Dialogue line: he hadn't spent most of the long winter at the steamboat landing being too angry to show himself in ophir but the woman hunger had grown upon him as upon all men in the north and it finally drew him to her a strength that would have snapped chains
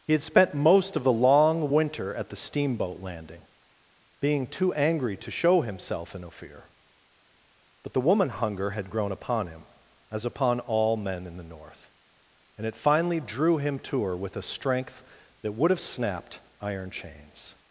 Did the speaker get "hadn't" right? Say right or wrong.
wrong